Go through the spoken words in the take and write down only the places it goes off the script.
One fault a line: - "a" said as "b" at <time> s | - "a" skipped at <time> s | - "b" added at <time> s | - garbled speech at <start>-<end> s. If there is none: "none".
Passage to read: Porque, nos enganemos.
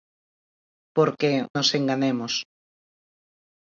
none